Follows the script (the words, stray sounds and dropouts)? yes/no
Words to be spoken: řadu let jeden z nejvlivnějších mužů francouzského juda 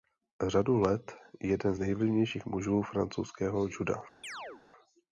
no